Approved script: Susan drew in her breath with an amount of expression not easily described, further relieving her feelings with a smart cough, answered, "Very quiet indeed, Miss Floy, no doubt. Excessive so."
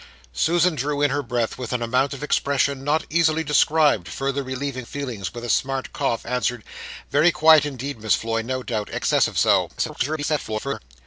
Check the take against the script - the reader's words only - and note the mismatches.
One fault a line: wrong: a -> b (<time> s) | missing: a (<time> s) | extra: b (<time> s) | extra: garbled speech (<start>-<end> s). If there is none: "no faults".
missing: her (4.8 s)
extra: garbled speech (9.8-10.8 s)